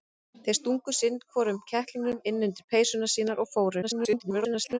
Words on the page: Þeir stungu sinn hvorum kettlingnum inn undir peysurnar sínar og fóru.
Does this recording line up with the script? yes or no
no